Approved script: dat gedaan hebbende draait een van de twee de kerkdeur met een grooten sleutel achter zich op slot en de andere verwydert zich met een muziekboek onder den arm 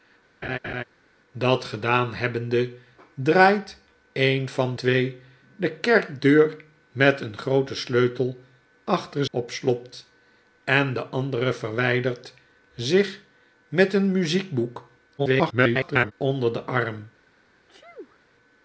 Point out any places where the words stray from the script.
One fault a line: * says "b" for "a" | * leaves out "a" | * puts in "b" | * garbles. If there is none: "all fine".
* leaves out "de"
* leaves out "zich"
* garbles